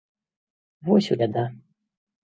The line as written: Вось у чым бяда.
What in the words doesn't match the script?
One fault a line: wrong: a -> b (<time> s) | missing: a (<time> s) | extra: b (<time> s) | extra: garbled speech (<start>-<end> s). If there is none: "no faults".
missing: чым (1.2 s)